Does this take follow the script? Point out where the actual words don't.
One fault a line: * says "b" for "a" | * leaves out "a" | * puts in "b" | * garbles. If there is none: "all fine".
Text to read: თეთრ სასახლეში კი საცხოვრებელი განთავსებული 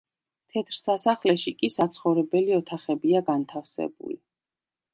* puts in "ოთახებია"